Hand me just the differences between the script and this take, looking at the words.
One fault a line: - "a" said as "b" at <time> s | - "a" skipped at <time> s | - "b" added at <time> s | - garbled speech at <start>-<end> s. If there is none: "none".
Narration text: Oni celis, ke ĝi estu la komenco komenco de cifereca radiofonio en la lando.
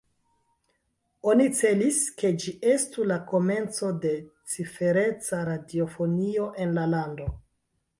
- "komenco" skipped at 3.9 s